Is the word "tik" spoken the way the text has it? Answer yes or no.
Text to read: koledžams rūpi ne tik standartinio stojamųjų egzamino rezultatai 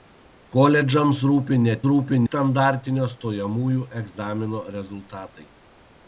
no